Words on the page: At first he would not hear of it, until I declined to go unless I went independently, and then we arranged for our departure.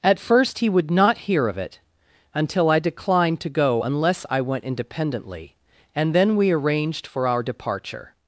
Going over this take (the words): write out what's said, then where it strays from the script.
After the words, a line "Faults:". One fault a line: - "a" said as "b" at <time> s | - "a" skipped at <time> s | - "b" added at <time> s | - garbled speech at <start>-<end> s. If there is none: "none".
At first he would not hear of it, until I declined to go unless I went independently, and then we arranged for our departure.
Faults:
none